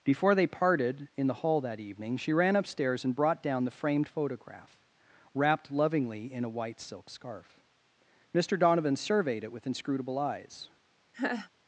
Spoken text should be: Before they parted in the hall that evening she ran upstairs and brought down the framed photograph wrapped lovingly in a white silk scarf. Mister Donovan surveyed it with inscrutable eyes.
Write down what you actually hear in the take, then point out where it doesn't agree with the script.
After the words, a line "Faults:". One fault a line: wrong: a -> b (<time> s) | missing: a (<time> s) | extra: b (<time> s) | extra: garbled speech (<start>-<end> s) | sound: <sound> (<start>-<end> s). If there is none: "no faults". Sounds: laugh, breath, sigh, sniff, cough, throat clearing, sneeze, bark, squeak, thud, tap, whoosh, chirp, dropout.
Before they parted in the hall that evening she ran upstairs and brought down the framed photograph wrapped lovingly in a white silk scarf. Mister Donovan surveyed it with inscrutable eyes.
Faults:
sound: laugh (11.1-11.5 s)